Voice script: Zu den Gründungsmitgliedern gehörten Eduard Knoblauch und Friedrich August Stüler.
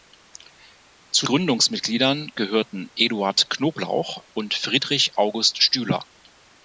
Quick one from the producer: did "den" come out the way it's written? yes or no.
no